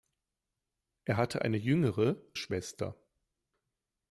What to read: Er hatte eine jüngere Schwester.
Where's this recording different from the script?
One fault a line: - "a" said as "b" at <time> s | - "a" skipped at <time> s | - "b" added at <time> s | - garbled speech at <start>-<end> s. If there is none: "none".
none